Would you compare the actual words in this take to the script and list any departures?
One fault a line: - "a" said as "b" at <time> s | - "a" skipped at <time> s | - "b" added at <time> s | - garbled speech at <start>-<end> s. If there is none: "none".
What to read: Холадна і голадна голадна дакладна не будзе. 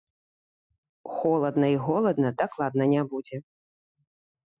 - "голадна" skipped at 2.3 s